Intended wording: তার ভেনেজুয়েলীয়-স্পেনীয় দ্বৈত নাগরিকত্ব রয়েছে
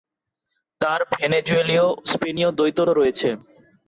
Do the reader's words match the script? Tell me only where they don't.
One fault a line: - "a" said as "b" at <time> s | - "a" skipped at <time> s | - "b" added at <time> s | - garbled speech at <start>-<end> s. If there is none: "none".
- "নাগরিকত্ব" skipped at 2.8 s